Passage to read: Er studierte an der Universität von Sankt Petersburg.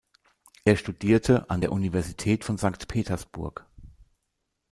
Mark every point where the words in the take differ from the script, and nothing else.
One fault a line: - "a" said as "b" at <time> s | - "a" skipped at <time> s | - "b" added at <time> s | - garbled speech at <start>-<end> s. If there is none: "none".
none